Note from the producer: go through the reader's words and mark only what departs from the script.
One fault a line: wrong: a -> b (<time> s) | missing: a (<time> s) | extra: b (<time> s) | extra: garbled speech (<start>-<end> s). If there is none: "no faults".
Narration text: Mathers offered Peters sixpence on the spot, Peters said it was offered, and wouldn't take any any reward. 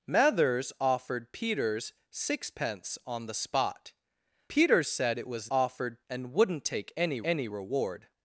no faults